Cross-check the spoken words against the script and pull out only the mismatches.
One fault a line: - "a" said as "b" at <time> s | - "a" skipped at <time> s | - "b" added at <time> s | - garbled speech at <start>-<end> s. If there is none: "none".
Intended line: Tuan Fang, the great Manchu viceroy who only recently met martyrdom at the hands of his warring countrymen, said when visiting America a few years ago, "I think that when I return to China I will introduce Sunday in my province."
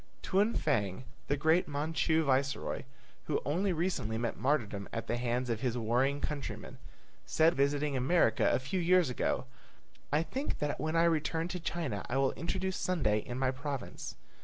- "when" skipped at 7.5 s